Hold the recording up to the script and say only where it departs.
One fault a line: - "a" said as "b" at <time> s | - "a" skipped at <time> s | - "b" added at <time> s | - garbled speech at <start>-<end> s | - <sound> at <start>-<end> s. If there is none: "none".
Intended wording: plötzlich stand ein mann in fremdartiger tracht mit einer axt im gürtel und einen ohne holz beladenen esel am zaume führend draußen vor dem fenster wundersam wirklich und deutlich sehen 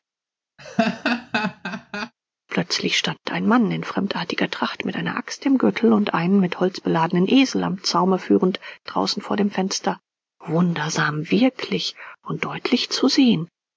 - laugh at 0.6-2.1 s
- "ohne" said as "mit" at 6.4 s
- "zu" added at 12.9 s